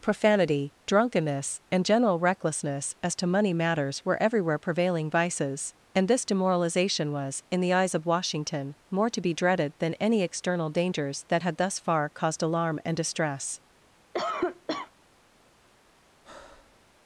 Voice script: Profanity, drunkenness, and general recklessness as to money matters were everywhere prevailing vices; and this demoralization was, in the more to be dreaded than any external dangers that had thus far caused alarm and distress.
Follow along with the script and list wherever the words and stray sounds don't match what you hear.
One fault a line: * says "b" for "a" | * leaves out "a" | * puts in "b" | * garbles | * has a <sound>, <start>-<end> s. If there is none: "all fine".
* puts in "eyes of Washington"
* has a cough, 14.1-14.9 s
* has a breath, 16.2-16.8 s